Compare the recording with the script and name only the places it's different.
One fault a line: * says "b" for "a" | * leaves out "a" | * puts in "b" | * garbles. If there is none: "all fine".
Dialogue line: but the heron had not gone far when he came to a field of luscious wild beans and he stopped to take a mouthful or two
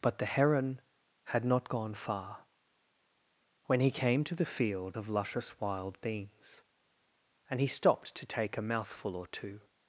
* says "the" for "a"